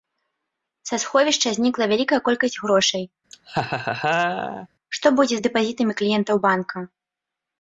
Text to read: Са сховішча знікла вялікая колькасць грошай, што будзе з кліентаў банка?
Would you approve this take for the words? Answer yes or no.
no